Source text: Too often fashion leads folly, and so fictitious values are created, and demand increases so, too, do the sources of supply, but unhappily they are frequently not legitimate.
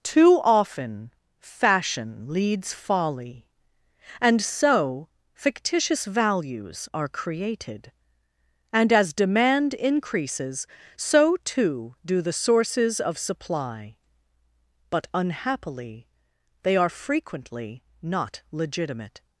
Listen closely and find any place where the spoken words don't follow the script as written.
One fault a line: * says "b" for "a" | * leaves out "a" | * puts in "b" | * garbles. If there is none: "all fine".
* puts in "as"